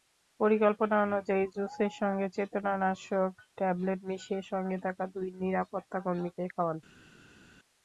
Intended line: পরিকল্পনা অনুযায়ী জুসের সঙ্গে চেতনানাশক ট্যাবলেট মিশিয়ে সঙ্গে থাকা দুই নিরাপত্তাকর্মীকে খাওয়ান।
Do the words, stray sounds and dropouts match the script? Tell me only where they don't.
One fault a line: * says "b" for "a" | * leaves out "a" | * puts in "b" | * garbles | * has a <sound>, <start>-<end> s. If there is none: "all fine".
all fine